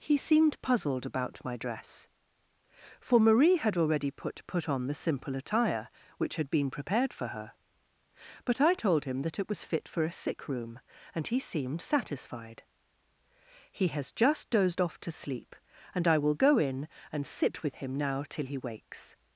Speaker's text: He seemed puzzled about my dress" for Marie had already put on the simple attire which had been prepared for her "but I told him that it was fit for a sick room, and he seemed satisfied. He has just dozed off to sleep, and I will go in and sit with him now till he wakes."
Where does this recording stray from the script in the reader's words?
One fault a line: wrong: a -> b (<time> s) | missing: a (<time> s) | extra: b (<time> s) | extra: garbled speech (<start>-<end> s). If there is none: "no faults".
extra: put (4.5 s)